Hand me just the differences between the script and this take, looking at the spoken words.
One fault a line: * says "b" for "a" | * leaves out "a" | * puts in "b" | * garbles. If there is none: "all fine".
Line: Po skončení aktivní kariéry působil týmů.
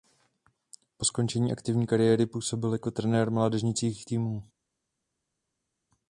* puts in "jako trenér mládežnických"